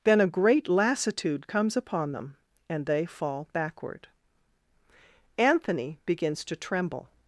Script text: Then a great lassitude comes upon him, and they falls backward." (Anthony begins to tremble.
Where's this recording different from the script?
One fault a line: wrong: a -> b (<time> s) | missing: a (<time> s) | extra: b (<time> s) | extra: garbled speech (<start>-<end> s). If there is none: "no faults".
wrong: him -> them (2.1 s)
wrong: falls -> fall (3.0 s)